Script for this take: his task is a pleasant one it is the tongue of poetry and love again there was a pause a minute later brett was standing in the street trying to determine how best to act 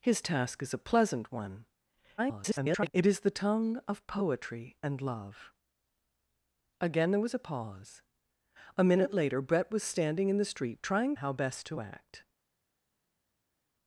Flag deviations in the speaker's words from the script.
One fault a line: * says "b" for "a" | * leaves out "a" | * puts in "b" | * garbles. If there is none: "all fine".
* garbles
* leaves out "to determine"